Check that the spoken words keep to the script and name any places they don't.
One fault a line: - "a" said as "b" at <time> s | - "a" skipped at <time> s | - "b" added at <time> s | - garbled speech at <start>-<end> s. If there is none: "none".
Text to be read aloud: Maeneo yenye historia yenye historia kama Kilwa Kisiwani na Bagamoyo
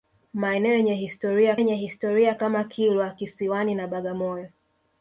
none